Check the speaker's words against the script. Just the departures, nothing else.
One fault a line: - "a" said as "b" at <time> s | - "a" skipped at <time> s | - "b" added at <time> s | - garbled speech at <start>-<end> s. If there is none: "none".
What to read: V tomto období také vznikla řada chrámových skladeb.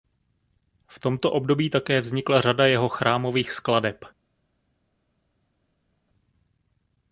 - "jeho" added at 2.6 s